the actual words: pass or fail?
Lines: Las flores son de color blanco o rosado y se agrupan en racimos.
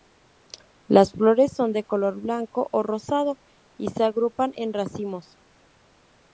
pass